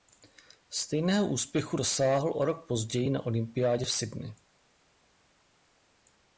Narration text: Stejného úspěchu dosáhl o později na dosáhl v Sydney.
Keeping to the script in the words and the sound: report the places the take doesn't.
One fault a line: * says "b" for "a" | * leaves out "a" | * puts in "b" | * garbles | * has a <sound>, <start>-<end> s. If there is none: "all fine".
* puts in "rok"
* says "olympiádě" for "dosáhl"